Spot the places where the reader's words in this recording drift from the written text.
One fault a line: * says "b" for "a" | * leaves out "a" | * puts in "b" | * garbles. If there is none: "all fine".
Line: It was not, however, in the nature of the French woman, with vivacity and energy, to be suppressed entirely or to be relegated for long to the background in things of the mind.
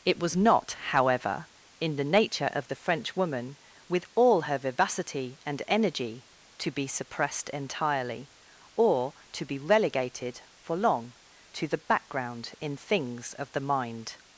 * puts in "all her"